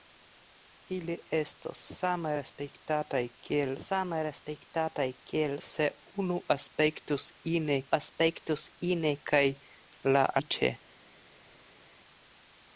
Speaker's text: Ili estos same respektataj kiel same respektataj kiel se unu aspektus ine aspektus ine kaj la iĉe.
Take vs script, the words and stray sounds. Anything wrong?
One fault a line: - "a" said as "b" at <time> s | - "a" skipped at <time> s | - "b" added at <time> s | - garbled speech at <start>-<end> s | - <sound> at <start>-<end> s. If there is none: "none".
none